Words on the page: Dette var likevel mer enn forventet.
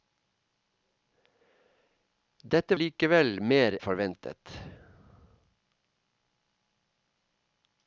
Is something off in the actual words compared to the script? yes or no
yes